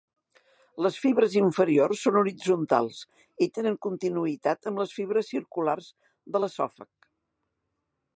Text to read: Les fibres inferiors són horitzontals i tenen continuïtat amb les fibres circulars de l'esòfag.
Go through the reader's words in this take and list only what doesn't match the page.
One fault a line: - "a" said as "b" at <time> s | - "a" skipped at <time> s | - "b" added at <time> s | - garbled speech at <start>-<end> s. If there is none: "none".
none